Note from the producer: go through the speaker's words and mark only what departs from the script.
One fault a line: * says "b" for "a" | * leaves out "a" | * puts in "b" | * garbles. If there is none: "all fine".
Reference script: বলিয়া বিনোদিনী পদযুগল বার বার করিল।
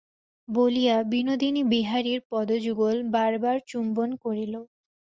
* puts in "বিহারীর"
* puts in "চুম্বন"